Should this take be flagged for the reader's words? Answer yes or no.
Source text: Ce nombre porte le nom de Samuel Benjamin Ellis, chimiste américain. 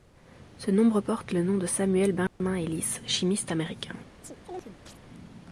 no